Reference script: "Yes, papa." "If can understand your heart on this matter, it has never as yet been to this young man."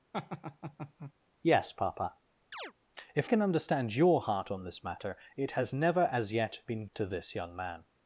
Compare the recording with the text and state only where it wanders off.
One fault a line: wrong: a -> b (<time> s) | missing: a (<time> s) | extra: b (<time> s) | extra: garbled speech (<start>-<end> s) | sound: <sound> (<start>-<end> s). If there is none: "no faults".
sound: laugh (0.1-1.1 s)
sound: chirp (2.5-2.7 s)